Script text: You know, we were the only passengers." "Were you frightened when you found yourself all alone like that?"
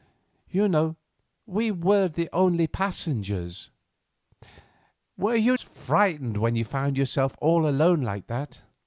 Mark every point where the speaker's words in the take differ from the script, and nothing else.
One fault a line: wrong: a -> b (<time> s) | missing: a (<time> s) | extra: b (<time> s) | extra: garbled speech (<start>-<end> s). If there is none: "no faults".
no faults